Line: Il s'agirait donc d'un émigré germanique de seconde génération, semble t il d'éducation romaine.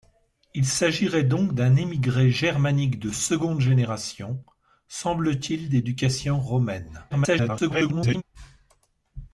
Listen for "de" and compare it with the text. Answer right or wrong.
right